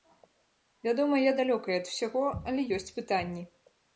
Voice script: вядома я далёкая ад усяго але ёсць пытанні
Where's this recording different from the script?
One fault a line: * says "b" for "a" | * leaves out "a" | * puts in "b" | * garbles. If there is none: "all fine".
all fine